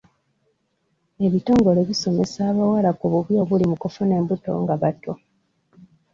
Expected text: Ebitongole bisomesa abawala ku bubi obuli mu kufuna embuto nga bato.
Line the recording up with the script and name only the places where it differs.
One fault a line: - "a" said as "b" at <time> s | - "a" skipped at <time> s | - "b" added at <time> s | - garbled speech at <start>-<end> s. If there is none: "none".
none